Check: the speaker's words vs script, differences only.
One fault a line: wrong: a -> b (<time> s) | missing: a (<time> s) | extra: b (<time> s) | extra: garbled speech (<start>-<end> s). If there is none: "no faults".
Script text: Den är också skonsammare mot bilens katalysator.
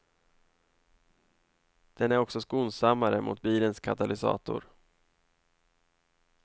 no faults